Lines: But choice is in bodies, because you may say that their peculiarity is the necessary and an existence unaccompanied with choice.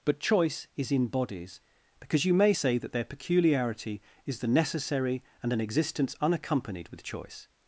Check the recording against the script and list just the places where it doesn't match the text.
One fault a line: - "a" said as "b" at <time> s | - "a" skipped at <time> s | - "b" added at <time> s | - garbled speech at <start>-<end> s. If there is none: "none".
none